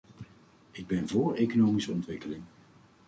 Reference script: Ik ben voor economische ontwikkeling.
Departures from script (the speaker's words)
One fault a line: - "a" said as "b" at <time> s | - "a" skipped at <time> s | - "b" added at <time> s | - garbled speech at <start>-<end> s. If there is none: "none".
none